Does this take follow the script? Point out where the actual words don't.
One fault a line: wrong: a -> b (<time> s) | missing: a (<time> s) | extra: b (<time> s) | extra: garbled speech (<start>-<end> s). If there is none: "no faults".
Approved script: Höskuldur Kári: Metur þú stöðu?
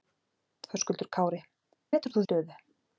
no faults